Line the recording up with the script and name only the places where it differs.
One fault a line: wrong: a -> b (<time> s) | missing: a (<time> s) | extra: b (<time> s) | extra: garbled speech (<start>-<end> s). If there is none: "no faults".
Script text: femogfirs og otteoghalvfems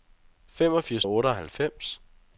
no faults